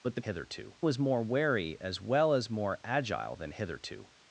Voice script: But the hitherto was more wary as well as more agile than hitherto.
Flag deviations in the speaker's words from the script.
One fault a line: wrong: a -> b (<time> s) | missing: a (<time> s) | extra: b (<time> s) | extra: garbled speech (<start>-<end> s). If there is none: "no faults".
no faults